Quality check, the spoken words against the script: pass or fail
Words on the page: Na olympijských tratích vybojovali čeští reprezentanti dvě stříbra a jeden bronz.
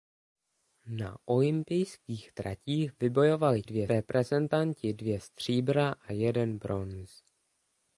fail